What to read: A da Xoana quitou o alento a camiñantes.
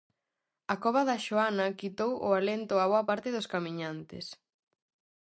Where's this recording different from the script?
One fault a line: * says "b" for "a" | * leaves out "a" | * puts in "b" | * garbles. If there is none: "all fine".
* puts in "cova"
* puts in "boa parte dos"